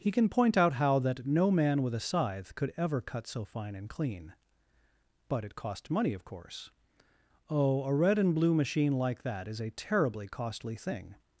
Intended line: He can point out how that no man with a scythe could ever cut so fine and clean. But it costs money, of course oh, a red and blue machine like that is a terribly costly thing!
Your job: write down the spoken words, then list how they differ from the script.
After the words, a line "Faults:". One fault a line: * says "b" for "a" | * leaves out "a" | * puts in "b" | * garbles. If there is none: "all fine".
He can point out how that no man with a scythe could ever cut so fine and clean. But it cost money, of course oh, a red and blue machine like that is a terribly costly thing!
Faults:
* says "cost" for "costs"